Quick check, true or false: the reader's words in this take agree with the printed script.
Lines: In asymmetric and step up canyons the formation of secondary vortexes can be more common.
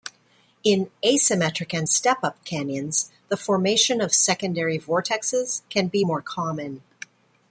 true